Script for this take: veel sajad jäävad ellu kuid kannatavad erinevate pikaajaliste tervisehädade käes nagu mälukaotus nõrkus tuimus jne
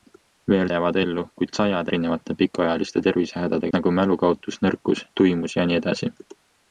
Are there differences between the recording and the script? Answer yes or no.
yes